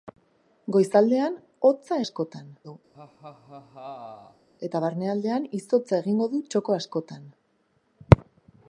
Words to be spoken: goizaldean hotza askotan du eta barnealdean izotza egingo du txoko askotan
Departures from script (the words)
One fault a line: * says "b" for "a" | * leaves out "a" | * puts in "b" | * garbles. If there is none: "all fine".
all fine